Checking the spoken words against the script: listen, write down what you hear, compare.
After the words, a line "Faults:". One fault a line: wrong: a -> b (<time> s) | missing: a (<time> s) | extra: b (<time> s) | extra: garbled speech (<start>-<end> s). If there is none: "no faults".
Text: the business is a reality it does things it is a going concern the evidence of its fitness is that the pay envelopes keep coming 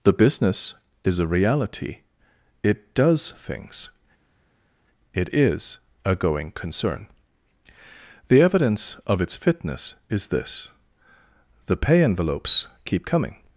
the business is a reality it does things it is a going concern the evidence of its fitness is this the pay envelopes keep coming
Faults:
wrong: that -> this (10.3 s)